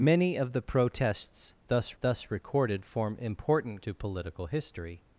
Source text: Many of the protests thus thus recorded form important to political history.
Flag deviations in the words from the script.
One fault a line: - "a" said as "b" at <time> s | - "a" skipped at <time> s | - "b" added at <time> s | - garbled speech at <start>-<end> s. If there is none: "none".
none